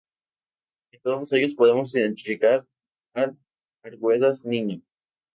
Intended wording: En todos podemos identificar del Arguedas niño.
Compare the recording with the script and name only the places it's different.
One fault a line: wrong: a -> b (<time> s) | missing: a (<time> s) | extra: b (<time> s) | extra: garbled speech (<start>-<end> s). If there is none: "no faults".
extra: ellos (1.3 s)
wrong: del -> al (3.1 s)